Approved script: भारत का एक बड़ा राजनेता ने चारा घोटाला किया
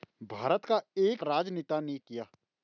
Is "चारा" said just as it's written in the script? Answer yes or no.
no